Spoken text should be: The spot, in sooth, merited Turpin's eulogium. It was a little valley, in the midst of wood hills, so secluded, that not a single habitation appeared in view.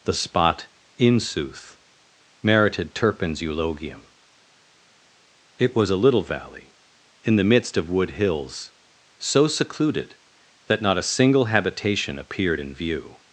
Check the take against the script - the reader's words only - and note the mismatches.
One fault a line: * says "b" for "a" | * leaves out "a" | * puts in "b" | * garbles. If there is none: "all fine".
all fine